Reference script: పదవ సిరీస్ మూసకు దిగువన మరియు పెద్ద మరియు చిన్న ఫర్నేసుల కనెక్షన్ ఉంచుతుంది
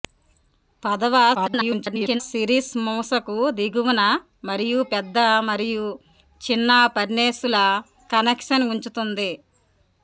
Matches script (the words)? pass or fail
fail